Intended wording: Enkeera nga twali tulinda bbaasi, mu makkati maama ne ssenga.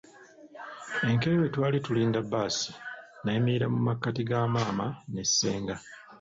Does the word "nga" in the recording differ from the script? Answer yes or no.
yes